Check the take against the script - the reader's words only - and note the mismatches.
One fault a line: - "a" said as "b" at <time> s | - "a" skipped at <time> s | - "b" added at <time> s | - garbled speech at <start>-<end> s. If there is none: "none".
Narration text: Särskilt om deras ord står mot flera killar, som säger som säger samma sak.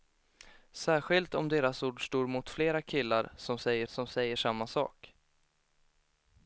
none